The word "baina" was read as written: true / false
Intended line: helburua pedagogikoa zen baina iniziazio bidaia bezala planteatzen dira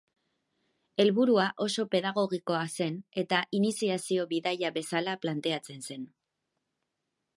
false